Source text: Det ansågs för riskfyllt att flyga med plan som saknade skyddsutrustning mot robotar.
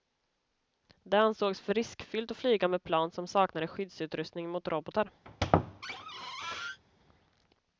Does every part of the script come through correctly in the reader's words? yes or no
yes